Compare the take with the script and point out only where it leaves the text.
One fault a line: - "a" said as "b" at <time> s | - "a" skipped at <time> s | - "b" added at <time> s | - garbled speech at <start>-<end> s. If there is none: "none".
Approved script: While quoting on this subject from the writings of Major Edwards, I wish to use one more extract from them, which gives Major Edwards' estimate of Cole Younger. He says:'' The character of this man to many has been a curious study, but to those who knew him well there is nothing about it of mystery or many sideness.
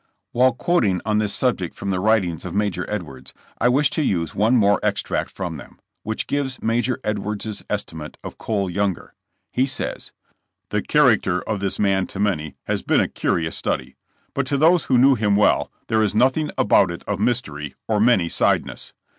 none